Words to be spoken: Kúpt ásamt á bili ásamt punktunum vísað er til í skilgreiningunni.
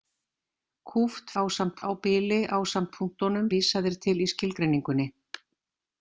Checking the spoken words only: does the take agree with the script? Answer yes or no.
yes